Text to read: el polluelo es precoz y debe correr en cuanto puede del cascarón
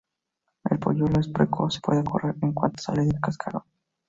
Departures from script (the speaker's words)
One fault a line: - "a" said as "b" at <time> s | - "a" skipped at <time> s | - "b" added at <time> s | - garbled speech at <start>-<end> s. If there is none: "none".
- "debe" said as "puede" at 1.8 s
- "puede" said as "sale" at 2.8 s